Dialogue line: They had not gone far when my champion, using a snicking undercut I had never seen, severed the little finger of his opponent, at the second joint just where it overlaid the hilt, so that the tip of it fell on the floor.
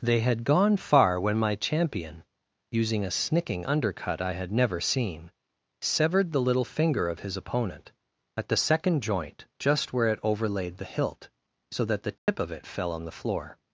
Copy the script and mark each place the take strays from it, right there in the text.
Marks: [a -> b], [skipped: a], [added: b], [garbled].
They had [skipped: not] gone far when my champion, using a snicking undercut I had never seen, severed the little finger of his opponent, at the second joint just where it overlaid the hilt, so that the tip of it fell on the floor.